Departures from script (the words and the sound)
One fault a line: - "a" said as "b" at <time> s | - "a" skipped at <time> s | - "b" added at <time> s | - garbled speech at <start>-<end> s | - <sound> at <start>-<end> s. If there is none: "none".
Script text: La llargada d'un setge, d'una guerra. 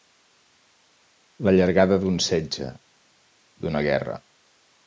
none